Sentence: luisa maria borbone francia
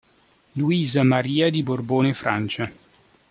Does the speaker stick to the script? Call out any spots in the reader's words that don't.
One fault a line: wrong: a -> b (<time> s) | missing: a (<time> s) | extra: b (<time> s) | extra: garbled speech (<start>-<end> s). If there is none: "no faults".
extra: di (1.5 s)